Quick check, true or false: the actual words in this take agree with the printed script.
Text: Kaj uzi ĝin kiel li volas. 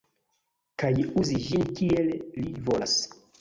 true